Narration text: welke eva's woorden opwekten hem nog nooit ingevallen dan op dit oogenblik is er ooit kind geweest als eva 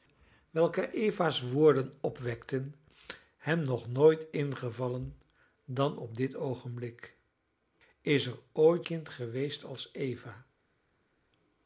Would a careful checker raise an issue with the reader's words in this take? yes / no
no